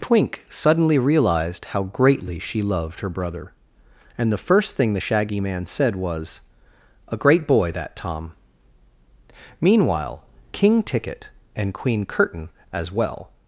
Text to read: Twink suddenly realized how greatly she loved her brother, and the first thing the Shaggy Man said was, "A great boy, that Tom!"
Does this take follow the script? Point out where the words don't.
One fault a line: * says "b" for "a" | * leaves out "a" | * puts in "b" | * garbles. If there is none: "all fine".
* puts in "Meanwhile King Ticket and Queen Curtain as well"